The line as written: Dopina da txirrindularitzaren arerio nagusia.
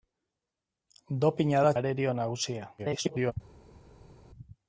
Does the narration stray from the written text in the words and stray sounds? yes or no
yes